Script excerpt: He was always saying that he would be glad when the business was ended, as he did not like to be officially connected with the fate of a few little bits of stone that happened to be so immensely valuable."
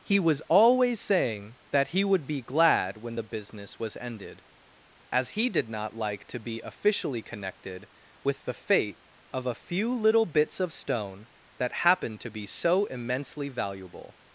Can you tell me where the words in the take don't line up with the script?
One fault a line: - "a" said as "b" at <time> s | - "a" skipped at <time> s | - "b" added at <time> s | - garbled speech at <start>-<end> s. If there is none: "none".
none